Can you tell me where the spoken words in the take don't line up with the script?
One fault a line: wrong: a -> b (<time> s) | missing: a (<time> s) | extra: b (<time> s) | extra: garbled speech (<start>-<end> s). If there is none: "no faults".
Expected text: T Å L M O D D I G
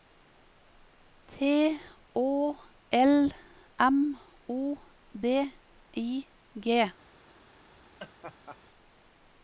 missing: D (5.3 s)